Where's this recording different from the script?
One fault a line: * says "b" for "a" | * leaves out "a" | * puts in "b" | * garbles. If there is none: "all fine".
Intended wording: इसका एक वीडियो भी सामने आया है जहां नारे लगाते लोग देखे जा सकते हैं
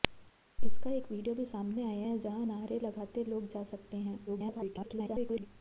* leaves out "देखे"
* garbles